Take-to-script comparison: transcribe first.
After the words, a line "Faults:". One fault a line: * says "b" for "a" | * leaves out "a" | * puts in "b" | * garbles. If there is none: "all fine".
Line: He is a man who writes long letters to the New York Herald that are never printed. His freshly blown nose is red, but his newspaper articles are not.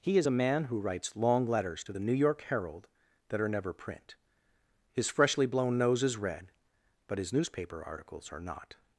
He is a man who writes long letters to the New York Herald that are never print. His freshly blown nose is red, but his newspaper articles are not.
Faults:
* says "print" for "printed"